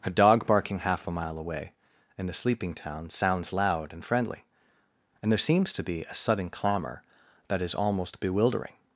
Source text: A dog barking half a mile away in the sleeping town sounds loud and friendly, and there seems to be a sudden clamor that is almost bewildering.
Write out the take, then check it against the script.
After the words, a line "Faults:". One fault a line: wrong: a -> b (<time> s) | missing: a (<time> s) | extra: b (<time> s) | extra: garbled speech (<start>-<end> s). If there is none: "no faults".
A dog barking half a mile away in the sleeping town sounds loud and friendly, and there seems to be a sudden clamor that is almost bewildering.
Faults:
no faults